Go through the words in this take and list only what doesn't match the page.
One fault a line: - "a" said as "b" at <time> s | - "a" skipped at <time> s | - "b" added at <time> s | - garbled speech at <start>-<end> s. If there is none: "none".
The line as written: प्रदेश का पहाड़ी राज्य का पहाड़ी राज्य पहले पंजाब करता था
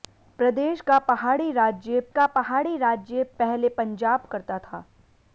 none